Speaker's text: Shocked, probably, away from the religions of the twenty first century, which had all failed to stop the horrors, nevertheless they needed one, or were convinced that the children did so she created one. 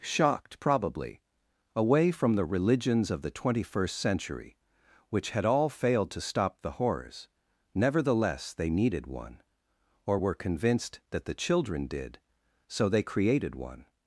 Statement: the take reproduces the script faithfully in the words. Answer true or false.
false